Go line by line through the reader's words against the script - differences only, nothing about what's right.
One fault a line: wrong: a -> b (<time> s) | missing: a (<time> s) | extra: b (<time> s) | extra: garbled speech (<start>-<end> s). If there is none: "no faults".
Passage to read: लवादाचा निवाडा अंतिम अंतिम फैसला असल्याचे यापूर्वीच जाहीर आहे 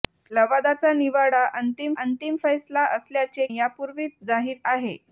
no faults